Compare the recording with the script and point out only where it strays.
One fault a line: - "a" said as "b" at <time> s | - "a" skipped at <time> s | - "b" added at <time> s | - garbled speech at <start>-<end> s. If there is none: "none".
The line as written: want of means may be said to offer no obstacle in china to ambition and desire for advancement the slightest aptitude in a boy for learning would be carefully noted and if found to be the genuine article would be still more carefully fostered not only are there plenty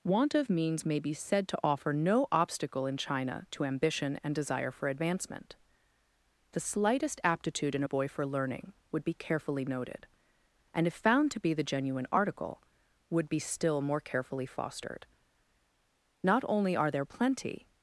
none